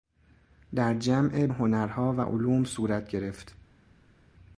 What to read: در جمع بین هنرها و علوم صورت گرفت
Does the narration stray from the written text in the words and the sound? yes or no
yes